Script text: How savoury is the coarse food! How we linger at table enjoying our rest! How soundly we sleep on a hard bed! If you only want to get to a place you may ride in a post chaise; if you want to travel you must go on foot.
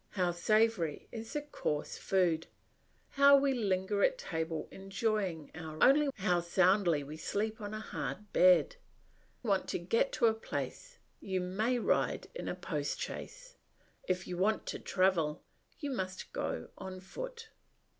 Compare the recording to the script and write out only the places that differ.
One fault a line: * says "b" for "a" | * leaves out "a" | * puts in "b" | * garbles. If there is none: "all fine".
* says "only" for "rest"
* leaves out "If you only"